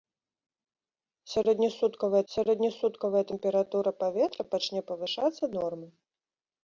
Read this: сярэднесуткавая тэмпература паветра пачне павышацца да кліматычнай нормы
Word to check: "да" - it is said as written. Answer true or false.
false